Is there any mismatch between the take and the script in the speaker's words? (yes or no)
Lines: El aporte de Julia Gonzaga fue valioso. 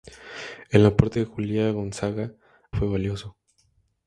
no